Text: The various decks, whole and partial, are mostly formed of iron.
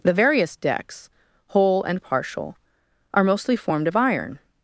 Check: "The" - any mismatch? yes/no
no